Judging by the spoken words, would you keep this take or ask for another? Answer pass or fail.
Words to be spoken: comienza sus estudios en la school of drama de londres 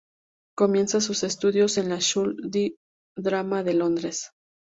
pass